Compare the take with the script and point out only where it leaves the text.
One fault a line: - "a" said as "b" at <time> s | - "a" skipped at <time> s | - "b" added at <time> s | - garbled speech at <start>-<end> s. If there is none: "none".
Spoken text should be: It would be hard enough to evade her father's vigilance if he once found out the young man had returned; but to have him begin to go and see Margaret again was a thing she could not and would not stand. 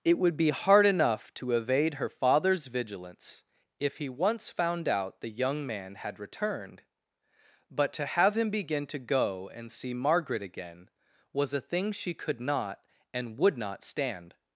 none